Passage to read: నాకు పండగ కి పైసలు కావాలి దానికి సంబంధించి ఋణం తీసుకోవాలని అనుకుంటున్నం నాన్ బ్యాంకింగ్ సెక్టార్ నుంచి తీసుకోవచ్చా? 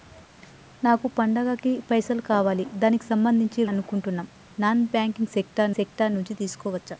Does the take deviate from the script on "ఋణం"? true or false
true